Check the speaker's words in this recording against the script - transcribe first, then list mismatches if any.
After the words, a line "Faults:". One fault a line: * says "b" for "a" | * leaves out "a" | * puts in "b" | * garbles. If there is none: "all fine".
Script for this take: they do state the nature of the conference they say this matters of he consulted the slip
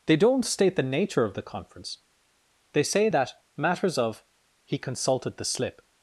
they don't state the nature of the conference they say that matters of he consulted the slip
Faults:
* says "don't" for "do"
* says "that" for "this"